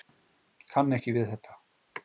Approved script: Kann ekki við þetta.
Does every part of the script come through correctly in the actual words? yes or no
yes